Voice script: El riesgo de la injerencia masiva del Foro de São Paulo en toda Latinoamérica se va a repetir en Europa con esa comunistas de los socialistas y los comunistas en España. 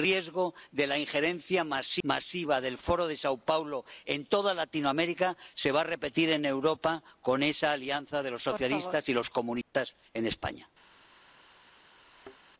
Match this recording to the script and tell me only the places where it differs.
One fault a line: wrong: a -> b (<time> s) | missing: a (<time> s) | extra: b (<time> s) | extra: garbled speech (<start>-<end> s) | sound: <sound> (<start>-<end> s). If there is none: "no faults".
wrong: comunistas -> alianza (7.7 s)
sound: dropout (9.6-9.7 s)
sound: thud (12.1-12.4 s)